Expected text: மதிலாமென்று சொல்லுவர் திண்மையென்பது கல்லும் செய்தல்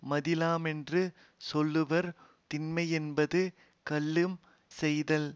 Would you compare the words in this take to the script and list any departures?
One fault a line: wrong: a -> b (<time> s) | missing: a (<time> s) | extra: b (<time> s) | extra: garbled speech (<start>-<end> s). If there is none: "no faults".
no faults